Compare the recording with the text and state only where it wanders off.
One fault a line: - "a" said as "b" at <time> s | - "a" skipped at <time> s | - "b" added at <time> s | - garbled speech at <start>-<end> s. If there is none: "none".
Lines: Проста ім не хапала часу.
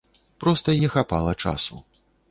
- "ім" skipped at 0.8 s